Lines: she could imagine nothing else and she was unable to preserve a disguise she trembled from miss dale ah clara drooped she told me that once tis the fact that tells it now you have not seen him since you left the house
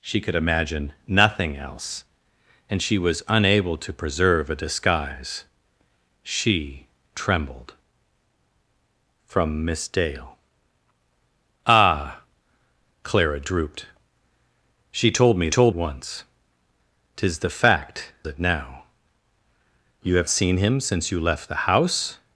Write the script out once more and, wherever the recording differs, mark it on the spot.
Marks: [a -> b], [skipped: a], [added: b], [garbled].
she could imagine nothing else and she was unable to preserve a disguise she trembled from miss dale ah clara drooped she told me [that -> told] once tis the fact [skipped: that tells] it now you have [skipped: not] seen him since you left the house